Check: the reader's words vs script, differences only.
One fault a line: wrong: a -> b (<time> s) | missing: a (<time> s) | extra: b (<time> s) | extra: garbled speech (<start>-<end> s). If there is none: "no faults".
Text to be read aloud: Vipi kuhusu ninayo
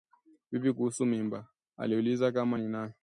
extra: mimba Aliuliza kama (1.1 s)